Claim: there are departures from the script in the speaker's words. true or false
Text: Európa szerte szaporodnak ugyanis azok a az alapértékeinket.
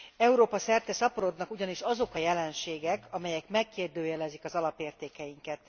true